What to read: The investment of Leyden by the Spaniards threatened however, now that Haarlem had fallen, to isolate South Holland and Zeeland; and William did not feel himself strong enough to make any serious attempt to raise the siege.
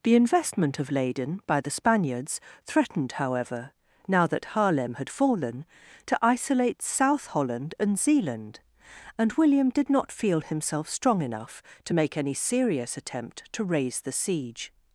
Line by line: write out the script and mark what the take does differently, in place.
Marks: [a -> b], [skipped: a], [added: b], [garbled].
The investment of Leyden by the Spaniards threatened however, now that Haarlem had fallen, to isolate South Holland and Zeeland; and William did not feel himself strong enough to make any serious attempt to raise the siege.